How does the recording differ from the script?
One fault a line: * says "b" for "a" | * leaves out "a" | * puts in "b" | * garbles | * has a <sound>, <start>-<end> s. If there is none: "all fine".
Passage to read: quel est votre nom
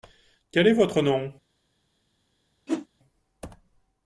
* has a whoosh, 2.7-2.9 s